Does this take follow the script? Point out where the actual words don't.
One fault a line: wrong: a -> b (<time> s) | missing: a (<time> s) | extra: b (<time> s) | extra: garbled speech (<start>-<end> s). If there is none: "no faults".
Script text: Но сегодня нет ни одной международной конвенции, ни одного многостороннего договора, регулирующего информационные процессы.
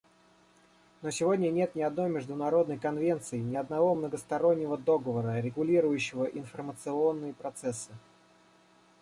no faults